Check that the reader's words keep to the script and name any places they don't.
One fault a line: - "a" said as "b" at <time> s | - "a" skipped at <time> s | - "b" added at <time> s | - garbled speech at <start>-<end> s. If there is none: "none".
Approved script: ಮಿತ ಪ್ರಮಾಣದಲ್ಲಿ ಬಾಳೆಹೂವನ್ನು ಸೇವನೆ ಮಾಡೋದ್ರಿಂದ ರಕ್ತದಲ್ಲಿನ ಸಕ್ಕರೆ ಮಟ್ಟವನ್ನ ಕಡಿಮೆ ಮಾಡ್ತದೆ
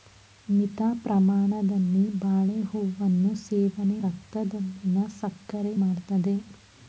- "ಮಾಡೋದ್ರಿಂದ" skipped at 4.0 s
- "ಮಟ್ಟವನ್ನ ಕಡಿಮೆ" skipped at 5.7 s